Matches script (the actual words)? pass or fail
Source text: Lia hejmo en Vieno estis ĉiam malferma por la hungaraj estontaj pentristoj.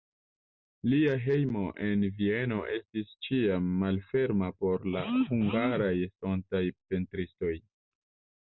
pass